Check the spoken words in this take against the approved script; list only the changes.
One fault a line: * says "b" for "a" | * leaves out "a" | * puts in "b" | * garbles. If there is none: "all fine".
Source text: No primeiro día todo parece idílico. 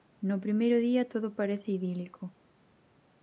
all fine